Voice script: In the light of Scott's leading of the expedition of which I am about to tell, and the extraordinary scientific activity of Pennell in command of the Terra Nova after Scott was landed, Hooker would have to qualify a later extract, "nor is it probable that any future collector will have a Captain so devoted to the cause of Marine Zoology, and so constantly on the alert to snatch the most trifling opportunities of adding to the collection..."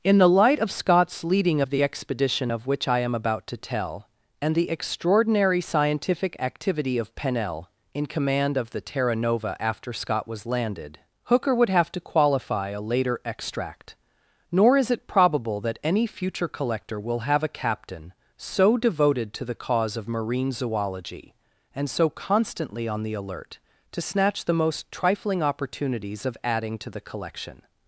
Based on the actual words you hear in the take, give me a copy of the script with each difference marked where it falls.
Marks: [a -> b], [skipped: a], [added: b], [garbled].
In the light of Scott's leading of the expedition of which I am about to tell, and the extraordinary scientific activity of Pennell in command of the Terra Nova after Scott was landed, Hooker would have to qualify a later extract, "nor is it probable that any future collector will have a Captain so devoted to the cause of Marine Zoology, and so constantly on the alert to snatch the most trifling opportunities of adding to the collection..."